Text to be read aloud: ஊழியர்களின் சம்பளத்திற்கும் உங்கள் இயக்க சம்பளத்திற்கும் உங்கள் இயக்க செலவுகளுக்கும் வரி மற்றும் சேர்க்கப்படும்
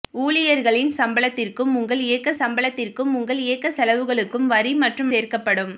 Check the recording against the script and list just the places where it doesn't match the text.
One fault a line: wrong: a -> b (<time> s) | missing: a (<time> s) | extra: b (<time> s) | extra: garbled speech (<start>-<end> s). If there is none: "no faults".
no faults